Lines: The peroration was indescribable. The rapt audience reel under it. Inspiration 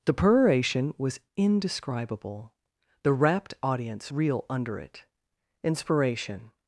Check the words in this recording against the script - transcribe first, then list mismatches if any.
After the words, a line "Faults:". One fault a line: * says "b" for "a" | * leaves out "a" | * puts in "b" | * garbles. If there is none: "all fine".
The peroration was indescribable. The rapt audience reel under it. Inspiration
Faults:
all fine